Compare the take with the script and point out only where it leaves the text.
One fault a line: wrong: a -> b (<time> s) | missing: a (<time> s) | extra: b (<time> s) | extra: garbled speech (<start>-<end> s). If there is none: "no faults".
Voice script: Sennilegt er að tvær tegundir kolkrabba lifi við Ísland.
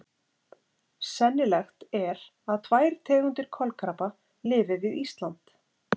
no faults